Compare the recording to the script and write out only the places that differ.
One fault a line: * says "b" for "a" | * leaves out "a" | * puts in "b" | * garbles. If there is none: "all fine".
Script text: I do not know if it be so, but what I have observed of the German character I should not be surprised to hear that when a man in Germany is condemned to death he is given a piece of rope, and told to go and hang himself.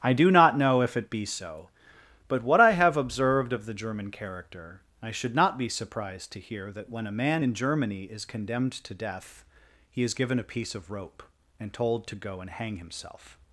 all fine